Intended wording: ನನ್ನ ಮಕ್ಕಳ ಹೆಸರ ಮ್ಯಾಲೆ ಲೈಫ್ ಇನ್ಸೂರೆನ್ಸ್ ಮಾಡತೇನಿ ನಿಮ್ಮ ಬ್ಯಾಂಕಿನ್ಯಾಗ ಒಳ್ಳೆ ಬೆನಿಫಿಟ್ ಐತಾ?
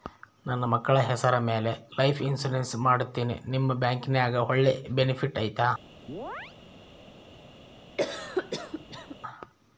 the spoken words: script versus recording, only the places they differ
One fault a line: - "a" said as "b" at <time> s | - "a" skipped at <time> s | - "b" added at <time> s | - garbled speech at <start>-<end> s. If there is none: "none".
none